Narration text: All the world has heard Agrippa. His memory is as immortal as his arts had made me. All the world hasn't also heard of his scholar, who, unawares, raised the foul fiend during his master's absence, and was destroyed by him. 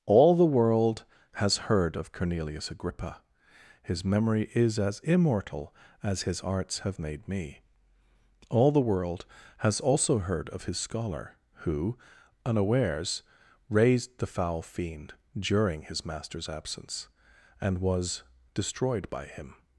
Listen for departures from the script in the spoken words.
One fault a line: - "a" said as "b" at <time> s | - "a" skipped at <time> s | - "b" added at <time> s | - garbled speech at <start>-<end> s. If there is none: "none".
- "of Cornelius" added at 1.9 s
- "had" said as "have" at 6.8 s
- "hasn't" said as "has" at 9.6 s